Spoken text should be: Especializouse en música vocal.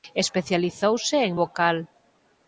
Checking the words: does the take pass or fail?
fail